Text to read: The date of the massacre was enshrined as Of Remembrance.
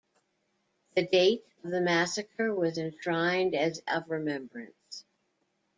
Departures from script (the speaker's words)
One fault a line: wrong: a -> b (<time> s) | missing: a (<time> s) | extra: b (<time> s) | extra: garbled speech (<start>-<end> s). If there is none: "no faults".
no faults